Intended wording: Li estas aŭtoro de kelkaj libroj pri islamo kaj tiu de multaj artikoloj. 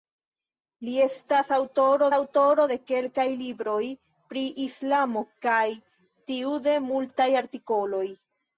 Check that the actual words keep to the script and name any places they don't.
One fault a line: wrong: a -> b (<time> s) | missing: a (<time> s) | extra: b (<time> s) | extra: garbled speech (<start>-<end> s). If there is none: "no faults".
extra: aŭtoro (2.2 s)